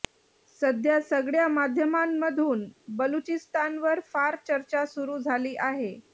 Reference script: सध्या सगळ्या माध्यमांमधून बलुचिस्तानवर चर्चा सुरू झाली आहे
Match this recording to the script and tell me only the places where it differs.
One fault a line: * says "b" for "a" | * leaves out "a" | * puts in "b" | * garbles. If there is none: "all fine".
* puts in "फार"